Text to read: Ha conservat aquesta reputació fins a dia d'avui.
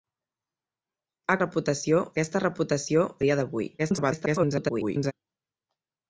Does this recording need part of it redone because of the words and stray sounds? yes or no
yes